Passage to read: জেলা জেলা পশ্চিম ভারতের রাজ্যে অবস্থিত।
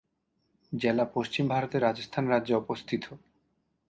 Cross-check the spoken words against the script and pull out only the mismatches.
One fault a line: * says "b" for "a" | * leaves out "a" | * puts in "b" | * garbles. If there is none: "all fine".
* leaves out "জেলা"
* puts in "রাজস্থান"